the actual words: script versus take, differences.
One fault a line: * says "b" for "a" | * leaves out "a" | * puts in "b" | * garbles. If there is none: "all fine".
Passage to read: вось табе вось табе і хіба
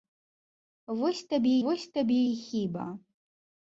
all fine